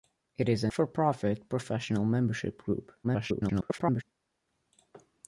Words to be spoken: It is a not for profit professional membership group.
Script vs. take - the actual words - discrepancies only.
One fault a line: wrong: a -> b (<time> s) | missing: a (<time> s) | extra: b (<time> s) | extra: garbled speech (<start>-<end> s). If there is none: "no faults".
missing: not (0.7 s)
extra: garbled speech (3.0-4.0 s)